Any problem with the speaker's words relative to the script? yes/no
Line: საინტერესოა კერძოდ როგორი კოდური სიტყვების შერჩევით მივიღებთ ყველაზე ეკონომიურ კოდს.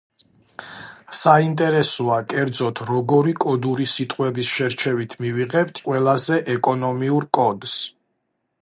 no